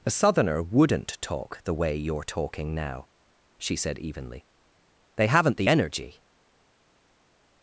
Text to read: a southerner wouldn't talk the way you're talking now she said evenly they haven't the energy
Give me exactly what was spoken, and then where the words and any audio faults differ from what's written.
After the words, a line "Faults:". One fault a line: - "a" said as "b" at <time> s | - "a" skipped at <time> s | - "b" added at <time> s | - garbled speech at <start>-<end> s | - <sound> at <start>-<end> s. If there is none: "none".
a southerner wouldn't talk the way you're talking now she said evenly they haven't the energy
Faults:
none